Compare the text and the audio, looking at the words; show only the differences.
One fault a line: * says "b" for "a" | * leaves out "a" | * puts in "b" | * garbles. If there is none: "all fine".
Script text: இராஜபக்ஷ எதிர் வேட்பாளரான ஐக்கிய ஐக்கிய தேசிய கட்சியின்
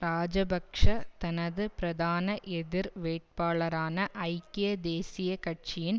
* puts in "தனது பிரதான"
* leaves out "ஐக்கிய"